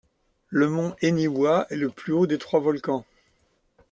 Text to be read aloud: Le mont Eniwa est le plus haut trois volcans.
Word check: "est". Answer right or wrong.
right